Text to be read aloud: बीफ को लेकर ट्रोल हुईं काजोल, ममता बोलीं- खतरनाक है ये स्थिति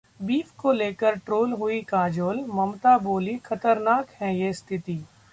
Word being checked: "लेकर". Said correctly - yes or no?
yes